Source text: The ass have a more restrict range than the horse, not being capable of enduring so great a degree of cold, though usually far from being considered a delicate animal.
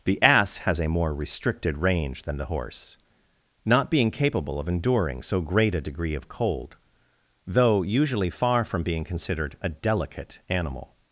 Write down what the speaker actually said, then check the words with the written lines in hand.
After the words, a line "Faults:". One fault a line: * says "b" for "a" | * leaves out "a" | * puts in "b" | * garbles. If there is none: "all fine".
The ass has a more restricted range than the horse, not being capable of enduring so great a degree of cold, though usually far from being considered a delicate animal.
Faults:
* says "has" for "have"
* says "restricted" for "restrict"